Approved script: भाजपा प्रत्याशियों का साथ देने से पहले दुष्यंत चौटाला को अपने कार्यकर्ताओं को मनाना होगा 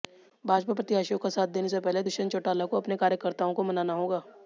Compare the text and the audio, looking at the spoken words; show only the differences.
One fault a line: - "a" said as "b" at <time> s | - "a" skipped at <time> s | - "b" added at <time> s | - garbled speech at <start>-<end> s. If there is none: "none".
none